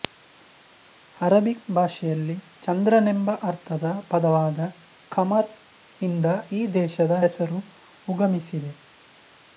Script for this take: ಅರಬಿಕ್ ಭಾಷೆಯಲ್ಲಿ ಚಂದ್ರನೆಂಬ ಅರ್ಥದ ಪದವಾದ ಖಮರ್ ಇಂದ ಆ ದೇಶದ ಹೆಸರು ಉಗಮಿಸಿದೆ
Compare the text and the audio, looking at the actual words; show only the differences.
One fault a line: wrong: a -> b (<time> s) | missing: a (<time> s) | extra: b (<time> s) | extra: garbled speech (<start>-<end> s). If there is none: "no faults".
wrong: ಆ -> ಈ (6.5 s)